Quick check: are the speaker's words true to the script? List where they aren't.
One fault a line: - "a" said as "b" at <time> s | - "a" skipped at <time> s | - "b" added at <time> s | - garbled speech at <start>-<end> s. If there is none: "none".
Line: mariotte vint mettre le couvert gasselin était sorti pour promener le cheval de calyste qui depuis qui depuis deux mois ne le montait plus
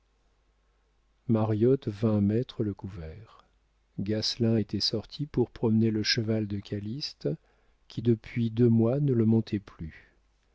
- "qui depuis" skipped at 8.5 s